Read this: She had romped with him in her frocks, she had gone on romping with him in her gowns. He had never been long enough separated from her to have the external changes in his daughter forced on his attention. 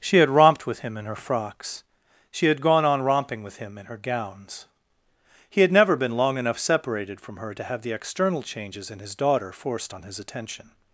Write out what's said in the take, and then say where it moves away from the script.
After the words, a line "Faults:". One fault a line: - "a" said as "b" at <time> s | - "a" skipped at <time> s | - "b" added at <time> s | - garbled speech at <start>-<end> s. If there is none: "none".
She had romped with him in her frocks, she had gone on romping with him in her gowns. He had never been long enough separated from her to have the external changes in his daughter forced on his attention.
Faults:
none